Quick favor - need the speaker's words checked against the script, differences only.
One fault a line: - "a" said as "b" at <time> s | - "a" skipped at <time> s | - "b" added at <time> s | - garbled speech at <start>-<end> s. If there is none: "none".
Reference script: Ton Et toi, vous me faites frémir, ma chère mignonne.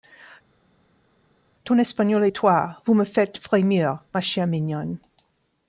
- "Espagnol" added at 1.8 s